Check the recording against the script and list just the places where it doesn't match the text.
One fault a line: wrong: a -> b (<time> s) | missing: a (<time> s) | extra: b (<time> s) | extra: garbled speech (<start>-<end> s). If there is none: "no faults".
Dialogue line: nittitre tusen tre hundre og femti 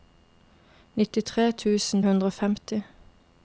missing: tre (2.0 s)